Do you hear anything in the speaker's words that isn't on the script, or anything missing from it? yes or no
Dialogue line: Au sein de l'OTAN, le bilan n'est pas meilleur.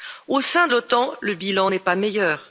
no